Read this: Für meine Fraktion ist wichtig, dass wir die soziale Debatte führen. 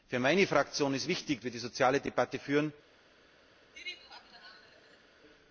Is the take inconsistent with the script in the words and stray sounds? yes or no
yes